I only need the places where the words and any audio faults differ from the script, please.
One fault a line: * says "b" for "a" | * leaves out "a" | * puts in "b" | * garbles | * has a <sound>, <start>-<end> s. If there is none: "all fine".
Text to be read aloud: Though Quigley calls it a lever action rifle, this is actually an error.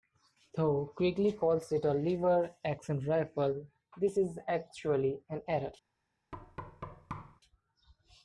* has a thud, 6.3-7.4 s